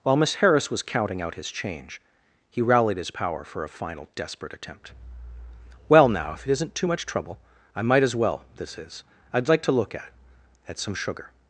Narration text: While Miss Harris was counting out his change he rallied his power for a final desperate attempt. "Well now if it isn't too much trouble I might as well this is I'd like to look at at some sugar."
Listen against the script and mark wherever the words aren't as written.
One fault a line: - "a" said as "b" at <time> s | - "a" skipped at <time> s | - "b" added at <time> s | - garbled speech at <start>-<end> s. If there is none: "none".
none